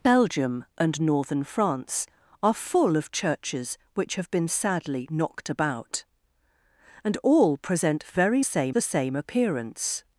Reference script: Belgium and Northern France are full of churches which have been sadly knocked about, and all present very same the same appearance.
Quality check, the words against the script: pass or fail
pass